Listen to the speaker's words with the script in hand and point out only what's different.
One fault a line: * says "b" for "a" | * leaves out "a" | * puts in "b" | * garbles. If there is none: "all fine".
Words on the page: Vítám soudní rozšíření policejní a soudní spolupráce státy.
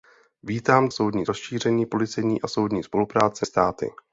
all fine